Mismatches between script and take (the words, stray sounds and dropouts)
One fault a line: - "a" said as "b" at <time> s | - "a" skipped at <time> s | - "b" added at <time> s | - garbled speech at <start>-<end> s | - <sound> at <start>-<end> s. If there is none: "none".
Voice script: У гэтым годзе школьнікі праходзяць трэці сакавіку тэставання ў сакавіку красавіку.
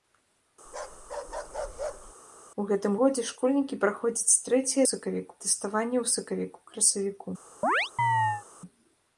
- bark at 0.7-2.1 s
- chirp at 7.6-8.4 s